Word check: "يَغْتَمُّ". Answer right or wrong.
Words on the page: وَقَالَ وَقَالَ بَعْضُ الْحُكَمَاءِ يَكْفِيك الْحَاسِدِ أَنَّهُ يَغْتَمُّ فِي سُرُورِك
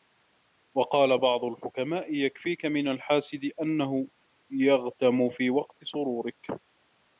right